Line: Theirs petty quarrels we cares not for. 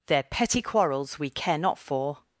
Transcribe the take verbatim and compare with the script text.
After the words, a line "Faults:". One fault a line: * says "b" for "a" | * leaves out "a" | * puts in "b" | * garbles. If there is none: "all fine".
Their petty quarrels we care not for.
Faults:
* says "Their" for "Theirs"
* says "care" for "cares"